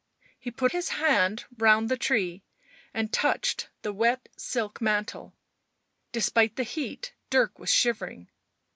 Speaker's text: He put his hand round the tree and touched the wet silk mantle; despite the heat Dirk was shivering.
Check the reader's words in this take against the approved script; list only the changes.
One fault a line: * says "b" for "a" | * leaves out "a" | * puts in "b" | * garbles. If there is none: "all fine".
all fine